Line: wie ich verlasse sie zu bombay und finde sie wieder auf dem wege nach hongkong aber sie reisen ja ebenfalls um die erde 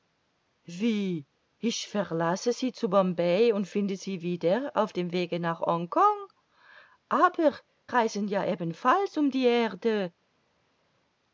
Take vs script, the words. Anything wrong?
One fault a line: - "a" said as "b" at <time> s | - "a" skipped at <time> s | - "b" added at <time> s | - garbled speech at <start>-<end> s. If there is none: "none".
- "sie" skipped at 7.5 s